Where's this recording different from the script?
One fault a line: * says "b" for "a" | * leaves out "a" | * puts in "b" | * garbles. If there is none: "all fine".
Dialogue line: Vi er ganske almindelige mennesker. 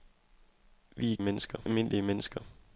* says "mennesker" for "ganske"